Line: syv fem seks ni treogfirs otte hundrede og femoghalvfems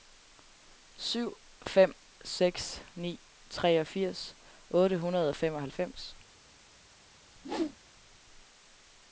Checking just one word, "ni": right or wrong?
right